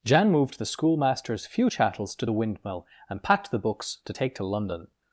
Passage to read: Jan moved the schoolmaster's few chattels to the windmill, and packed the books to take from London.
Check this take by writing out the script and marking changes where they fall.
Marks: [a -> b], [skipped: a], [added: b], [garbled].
Jan moved the schoolmaster's few chattels to the windmill, and packed the books to take [from -> to] London.